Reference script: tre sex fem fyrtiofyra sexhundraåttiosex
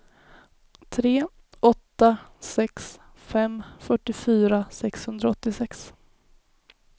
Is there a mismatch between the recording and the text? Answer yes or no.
yes